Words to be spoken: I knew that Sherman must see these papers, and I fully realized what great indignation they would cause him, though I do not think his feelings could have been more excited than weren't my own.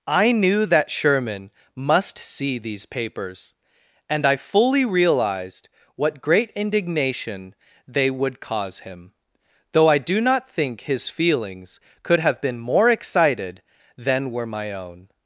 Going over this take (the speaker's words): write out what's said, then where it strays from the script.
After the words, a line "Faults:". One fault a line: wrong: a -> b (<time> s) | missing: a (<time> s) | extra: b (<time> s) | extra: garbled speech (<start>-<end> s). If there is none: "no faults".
I knew that Sherman must see these papers, and I fully realized what great indignation they would cause him, though I do not think his feelings could have been more excited than were my own.
Faults:
wrong: weren't -> were (14.3 s)